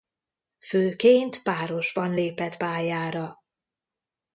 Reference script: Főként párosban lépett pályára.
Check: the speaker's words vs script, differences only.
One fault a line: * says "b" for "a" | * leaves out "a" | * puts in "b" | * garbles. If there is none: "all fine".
all fine